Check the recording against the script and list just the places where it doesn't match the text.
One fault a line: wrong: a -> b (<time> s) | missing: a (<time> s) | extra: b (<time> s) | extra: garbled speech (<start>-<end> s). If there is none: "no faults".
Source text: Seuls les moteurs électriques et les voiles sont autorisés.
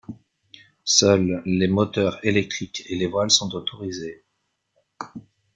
no faults